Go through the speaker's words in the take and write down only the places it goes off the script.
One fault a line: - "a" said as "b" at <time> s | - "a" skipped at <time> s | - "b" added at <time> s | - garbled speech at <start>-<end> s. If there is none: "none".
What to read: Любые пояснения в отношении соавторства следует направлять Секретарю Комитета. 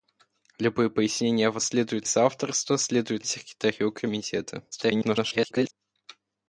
- "отношении" said as "следует" at 1.6 s
- "направлять" skipped at 3.2 s
- garbled speech at 4.7-5.7 s